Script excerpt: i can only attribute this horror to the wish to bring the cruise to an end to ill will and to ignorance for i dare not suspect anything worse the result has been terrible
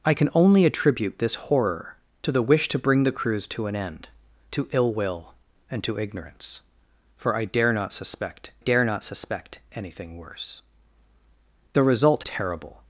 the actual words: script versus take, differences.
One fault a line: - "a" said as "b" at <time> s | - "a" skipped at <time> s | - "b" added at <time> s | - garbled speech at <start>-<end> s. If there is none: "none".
- "dare not suspect" added at 8.6 s
- "has been" skipped at 12.2 s